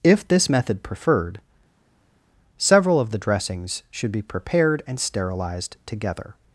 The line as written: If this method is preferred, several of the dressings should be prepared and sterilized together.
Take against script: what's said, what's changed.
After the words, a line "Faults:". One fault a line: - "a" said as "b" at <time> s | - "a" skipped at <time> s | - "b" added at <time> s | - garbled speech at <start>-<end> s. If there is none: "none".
If this method preferred, several of the dressings should be prepared and sterilized together.
Faults:
- "is" skipped at 0.8 s